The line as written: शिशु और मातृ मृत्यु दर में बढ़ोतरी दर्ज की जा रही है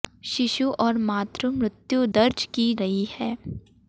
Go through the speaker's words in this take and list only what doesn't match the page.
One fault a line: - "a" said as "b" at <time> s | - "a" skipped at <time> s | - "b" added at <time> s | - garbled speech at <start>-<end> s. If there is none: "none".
- "दर में बढ़ोतरी" skipped at 2.0 s
- "जा" skipped at 2.7 s